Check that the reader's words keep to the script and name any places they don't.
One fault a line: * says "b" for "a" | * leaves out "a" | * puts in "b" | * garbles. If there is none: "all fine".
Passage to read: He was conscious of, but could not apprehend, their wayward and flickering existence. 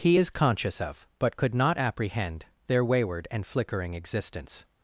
* says "is" for "was"